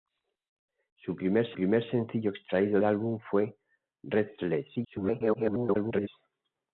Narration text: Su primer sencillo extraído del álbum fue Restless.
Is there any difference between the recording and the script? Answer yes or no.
yes